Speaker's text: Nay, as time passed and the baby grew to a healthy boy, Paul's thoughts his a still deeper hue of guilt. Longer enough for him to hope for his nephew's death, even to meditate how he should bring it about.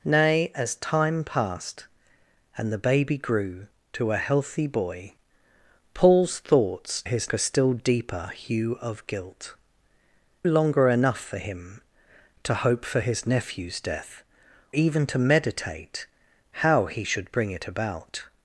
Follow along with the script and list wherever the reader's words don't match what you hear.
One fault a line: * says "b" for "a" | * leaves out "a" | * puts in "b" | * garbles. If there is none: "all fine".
all fine